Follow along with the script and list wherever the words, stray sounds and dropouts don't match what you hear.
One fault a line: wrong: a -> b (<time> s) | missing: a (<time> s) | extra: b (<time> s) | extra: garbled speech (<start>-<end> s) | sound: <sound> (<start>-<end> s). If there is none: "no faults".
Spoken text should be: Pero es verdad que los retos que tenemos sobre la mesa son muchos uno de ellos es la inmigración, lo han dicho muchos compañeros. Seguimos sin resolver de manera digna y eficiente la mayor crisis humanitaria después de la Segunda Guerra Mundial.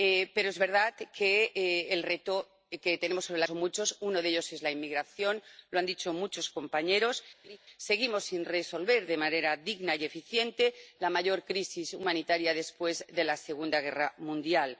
missing: mesa (3.5 s)
sound: laugh (7.4-7.6 s)